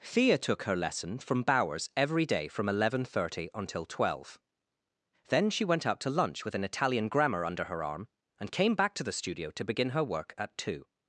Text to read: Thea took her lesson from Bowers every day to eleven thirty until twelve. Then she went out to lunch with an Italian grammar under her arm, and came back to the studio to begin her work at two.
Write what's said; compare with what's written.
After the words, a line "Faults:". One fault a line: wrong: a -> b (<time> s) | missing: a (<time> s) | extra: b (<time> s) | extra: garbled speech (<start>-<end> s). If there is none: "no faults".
Thea took her lesson from Bowers every day from eleven thirty until twelve. Then she went out to lunch with an Italian grammar under her arm, and came back to the studio to begin her work at two.
Faults:
wrong: to -> from (2.5 s)